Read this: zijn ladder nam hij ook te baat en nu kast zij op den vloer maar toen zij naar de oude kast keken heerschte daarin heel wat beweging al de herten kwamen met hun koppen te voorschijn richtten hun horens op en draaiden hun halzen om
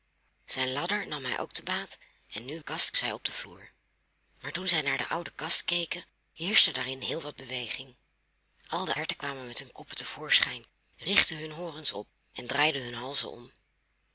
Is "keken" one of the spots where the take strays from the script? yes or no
no